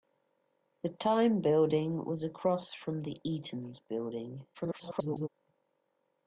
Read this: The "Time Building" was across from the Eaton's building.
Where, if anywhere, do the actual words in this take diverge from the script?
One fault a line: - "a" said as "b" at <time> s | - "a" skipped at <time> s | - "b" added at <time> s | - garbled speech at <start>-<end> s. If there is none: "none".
- garbled speech at 4.5-5.3 s